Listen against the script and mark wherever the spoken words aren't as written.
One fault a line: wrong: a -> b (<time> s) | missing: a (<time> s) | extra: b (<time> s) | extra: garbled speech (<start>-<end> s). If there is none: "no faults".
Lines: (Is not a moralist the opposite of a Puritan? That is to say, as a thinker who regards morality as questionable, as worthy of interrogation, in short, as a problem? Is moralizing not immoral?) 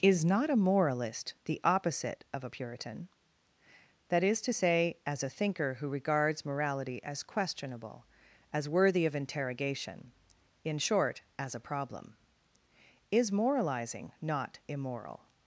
no faults